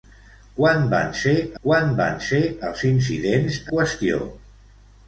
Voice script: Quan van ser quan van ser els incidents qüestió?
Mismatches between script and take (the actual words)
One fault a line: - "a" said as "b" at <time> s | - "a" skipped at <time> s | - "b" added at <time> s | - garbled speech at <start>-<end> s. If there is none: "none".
none